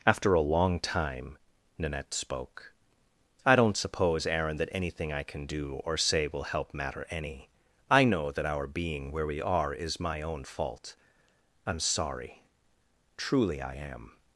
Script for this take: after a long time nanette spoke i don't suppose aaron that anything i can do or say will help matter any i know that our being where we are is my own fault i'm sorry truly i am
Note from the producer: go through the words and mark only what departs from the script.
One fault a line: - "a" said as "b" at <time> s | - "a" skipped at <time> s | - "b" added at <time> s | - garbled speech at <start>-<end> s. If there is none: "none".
none